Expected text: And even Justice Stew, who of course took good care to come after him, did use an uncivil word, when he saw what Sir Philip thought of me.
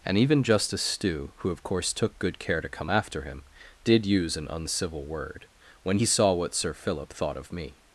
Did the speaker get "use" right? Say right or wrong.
right